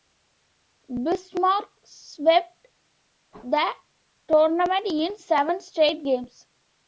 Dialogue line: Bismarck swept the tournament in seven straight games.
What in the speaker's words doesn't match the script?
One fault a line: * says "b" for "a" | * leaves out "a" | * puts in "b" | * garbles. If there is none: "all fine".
all fine